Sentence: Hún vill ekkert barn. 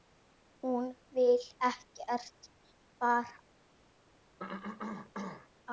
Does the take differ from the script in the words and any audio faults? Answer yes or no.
yes